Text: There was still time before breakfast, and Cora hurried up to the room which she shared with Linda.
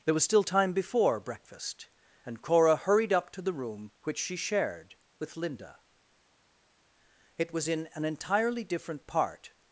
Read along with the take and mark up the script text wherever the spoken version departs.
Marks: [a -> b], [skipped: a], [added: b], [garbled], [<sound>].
There was still time before breakfast, and Cora hurried up to the room which she shared with Linda. [added: It was in an entirely different part]